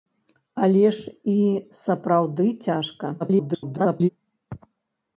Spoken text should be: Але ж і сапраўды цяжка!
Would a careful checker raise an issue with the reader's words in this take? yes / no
yes